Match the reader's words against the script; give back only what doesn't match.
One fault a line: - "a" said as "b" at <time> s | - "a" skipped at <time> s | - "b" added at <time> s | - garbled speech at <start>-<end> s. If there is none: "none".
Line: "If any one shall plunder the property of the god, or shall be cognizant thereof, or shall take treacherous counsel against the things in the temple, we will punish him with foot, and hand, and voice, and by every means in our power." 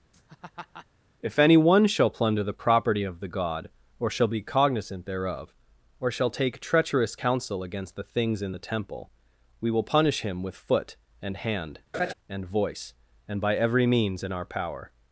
none